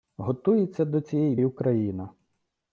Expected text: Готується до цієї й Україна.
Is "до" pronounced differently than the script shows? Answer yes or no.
no